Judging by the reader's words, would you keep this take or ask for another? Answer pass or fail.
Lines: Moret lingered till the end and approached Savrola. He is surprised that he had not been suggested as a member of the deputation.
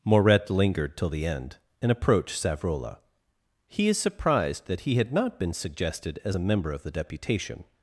pass